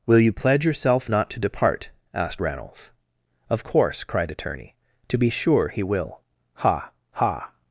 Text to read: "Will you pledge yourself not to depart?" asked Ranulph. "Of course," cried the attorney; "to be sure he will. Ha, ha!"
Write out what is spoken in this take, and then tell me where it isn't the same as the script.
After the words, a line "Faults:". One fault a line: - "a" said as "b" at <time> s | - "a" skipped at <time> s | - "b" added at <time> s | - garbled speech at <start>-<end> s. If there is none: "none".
"Will you pledge yourself not to depart?" asked Ranulph. "Of course," cried attorney; "to be sure he will. Ha, ha!"
Faults:
- "the" skipped at 4.3 s